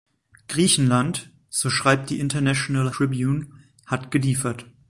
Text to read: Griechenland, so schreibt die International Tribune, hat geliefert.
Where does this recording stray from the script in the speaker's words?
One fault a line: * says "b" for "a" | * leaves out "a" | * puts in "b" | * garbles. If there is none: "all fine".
all fine